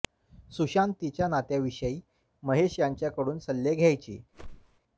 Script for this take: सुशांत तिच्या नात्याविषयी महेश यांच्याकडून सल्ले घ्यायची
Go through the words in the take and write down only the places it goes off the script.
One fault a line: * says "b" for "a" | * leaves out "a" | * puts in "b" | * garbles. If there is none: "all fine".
all fine